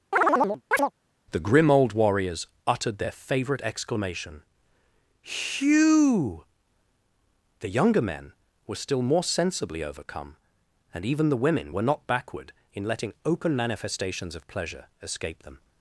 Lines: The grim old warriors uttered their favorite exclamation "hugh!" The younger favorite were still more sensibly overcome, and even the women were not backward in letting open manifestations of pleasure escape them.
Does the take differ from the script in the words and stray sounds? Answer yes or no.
yes